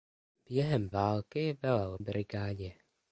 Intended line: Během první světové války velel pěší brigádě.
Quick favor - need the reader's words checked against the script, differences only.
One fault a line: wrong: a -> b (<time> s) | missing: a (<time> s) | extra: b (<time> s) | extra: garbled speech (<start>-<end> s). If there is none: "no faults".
missing: první světové (0.9 s)
missing: pěší (2.0 s)